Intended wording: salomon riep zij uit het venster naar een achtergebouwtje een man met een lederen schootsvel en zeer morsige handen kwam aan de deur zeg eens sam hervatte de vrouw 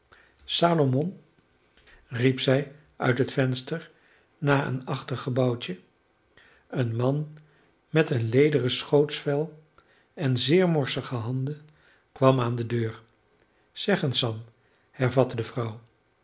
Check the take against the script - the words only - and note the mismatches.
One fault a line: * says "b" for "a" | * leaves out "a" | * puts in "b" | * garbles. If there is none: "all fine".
all fine